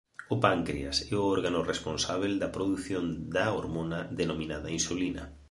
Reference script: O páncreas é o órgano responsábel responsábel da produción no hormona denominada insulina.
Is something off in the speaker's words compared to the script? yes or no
yes